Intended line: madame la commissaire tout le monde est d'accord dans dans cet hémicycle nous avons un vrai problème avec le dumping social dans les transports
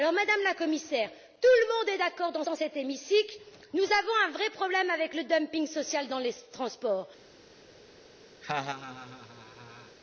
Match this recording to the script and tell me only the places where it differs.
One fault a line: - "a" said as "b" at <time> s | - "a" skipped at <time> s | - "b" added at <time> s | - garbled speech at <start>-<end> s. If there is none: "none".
none